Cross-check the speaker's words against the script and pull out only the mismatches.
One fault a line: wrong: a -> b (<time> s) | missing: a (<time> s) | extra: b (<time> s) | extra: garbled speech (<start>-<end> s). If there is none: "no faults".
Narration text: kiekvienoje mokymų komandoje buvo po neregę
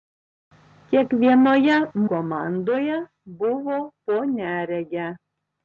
missing: mokymų (1.8 s)